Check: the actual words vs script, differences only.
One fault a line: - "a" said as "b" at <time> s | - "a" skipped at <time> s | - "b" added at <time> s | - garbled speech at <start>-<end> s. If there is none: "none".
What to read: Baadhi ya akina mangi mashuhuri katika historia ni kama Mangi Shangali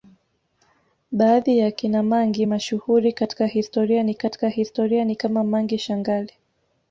- "katika historia ni" added at 4.2 s